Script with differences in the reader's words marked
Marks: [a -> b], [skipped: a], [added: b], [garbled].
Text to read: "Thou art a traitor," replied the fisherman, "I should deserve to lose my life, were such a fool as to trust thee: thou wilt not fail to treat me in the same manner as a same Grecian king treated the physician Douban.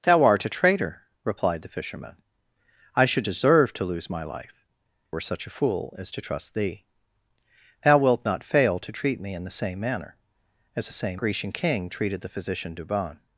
"Thou art a traitor," replied the fisherman, "I should deserve to lose my life, were such a fool as to trust thee: thou wilt not fail to treat me in the same manner as a same Grecian king treated the physician Douban.